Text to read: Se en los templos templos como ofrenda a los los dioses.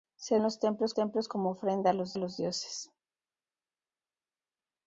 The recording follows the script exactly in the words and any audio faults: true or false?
true